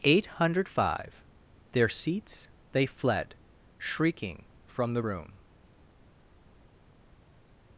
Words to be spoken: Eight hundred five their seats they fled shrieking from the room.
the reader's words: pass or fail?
pass